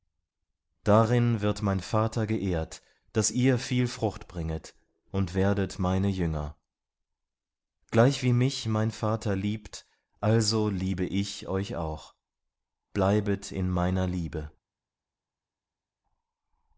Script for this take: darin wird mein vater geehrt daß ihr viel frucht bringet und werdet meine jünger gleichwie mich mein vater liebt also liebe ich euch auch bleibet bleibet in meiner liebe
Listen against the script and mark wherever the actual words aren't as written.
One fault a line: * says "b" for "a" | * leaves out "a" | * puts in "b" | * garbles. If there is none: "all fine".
* leaves out "bleibet"